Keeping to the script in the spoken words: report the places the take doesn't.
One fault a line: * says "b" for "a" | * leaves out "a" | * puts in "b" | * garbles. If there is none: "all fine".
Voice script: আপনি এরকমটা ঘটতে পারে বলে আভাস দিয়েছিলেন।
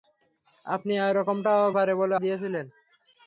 * leaves out "ঘটতে"
* leaves out "আভাস"